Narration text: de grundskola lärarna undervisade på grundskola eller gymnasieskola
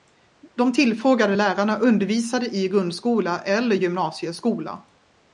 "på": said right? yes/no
no